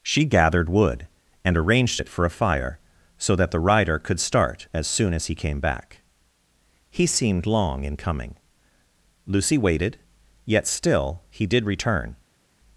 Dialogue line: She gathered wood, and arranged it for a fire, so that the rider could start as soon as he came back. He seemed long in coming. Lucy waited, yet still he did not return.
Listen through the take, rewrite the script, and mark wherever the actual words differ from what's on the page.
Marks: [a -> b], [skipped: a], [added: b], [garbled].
She gathered wood, and arranged it for a fire, so that the rider could start as soon as he came back. He seemed long in coming. Lucy waited, yet still he did [skipped: not] return.